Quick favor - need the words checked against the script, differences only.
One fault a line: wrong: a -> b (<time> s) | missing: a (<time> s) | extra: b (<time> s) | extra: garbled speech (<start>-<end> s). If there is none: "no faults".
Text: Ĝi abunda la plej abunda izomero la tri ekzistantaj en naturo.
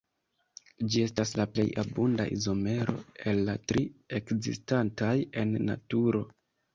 wrong: abunda -> estas (1.1 s)
extra: el (3.3 s)